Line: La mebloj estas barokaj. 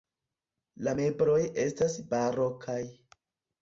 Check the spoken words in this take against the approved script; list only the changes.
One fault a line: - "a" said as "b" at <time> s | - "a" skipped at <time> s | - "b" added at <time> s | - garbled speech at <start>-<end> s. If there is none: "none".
none